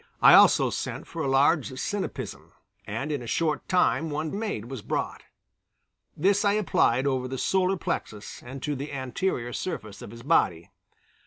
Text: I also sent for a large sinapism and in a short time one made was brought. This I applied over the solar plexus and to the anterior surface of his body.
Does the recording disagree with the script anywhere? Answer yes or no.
no